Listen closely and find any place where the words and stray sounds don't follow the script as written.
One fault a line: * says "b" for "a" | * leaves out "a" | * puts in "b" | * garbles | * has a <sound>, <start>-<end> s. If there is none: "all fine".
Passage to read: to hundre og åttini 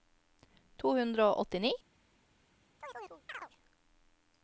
* has a chirp, 2.8-3.5 s